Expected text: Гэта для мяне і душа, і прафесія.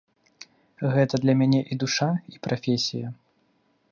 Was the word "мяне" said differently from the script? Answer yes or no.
no